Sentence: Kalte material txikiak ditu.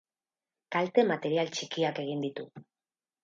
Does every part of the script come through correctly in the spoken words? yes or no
no